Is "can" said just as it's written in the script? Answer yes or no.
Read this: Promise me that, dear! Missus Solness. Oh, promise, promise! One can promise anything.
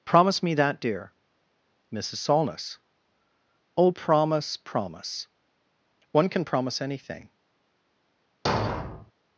yes